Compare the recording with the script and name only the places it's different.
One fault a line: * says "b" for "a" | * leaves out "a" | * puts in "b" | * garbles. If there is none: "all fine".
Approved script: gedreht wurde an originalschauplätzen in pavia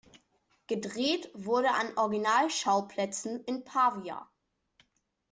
all fine